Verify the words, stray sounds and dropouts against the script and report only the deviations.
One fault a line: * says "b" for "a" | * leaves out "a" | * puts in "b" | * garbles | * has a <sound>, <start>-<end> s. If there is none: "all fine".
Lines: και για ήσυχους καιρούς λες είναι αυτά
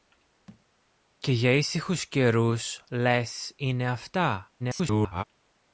* has a thud, 0.5-0.7 s
* garbles